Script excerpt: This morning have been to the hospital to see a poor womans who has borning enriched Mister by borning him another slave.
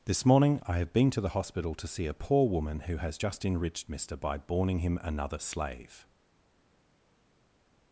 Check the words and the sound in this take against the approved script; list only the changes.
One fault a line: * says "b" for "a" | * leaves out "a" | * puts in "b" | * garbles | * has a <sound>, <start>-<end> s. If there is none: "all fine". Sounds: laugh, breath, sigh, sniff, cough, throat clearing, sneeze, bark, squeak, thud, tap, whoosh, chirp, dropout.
* puts in "I"
* says "woman" for "womans"
* says "just" for "borning"